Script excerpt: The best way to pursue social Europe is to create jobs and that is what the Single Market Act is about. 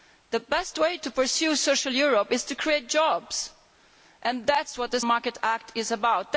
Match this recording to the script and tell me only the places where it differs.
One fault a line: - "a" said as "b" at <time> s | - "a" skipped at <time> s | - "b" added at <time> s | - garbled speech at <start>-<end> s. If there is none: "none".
- "Single" skipped at 5.0 s